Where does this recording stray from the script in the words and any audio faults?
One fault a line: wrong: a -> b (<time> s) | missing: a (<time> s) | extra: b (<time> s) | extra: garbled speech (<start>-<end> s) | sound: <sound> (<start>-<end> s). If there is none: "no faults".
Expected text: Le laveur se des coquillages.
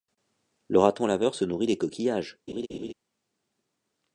extra: raton (0.8 s)
extra: nourrit (1.4 s)
sound: laugh (2.5-2.9 s)